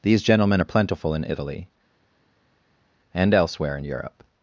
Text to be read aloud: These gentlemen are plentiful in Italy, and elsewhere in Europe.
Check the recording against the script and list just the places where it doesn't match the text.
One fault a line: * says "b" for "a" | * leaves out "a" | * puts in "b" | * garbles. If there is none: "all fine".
all fine